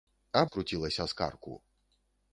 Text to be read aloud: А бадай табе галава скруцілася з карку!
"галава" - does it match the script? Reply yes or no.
no